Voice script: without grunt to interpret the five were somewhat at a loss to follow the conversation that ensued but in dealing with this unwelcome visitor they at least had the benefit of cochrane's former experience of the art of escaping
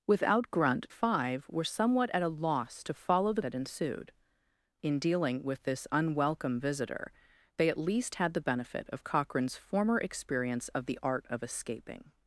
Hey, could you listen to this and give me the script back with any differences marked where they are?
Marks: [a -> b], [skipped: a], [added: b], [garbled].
without grunt [skipped: to interpret the] five were somewhat at a loss to follow the [skipped: conversation] that ensued [skipped: but] in dealing with this unwelcome visitor they at least had the benefit of cochrane's former experience of the art of escaping